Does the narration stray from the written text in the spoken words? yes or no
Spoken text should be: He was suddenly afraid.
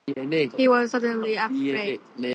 no